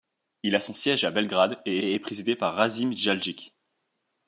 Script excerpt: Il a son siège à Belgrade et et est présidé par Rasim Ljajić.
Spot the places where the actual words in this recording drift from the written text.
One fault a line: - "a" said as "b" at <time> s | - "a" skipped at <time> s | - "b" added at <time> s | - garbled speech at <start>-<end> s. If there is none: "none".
none